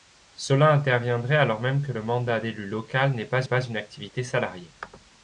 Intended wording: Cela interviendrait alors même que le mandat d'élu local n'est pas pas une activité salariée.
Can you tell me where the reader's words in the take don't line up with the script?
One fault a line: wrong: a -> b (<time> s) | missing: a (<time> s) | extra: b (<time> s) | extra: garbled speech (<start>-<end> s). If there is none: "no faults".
no faults